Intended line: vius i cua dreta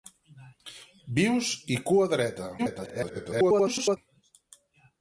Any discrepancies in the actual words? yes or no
yes